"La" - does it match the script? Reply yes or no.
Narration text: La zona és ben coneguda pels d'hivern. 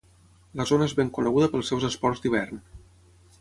yes